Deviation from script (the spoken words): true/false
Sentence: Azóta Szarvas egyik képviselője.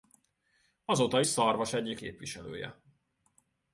false